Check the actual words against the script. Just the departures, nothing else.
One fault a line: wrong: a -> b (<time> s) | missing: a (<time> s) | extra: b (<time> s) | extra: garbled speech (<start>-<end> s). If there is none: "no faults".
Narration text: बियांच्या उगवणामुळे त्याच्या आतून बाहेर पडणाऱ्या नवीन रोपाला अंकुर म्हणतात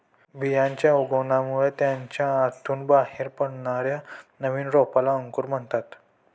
no faults